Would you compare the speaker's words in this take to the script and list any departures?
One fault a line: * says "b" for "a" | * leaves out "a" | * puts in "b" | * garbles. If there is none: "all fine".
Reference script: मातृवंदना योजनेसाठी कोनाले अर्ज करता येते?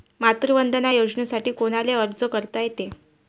all fine